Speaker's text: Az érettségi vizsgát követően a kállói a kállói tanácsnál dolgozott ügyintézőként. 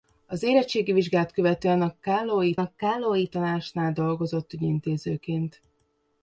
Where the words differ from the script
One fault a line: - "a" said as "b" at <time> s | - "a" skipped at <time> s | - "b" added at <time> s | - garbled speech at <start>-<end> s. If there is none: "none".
none